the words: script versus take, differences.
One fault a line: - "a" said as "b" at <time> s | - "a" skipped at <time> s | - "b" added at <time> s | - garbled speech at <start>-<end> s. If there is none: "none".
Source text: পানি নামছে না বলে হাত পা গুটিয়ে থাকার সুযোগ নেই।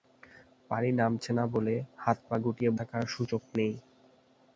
none